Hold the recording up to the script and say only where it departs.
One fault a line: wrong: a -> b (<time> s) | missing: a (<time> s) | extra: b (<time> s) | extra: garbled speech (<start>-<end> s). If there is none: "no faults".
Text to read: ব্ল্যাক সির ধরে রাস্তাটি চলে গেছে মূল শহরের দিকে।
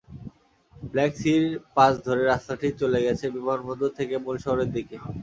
extra: পাশ (1.8 s)
extra: বিমানবন্দর থেকে (3.3 s)